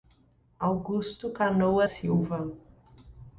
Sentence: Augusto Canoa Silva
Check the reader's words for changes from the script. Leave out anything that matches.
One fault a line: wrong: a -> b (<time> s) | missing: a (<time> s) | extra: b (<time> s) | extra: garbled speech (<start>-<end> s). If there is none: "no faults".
no faults